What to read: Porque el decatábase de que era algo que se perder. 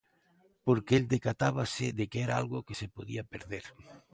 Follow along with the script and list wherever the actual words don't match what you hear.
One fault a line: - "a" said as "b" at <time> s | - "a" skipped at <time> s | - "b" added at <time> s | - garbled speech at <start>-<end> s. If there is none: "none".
- "podía" added at 2.9 s